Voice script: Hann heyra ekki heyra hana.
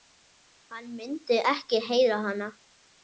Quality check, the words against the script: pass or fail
fail